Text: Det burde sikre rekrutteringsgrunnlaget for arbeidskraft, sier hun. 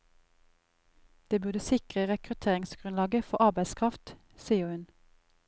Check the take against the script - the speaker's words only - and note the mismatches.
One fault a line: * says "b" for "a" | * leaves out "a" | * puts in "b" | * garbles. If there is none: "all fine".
all fine